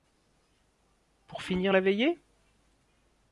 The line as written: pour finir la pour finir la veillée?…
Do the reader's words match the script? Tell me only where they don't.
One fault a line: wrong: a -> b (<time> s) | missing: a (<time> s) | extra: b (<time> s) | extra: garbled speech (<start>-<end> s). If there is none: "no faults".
missing: pour finir la (1.8 s)